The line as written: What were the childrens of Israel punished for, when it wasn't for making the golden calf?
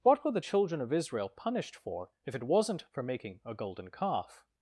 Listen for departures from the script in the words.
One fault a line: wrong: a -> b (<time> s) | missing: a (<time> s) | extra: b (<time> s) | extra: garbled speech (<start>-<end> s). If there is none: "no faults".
wrong: childrens -> children (0.4 s)
wrong: when -> if (2.2 s)
wrong: the -> a (3.4 s)